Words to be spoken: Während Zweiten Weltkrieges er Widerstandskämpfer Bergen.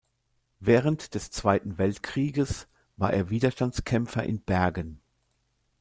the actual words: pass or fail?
fail